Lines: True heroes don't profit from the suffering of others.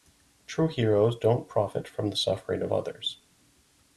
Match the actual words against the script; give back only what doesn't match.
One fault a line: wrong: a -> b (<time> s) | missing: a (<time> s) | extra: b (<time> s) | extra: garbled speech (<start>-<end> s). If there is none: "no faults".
no faults